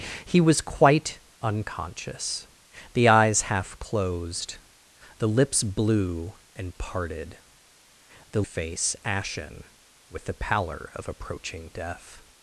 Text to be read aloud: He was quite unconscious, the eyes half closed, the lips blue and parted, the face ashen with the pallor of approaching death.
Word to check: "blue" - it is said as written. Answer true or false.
true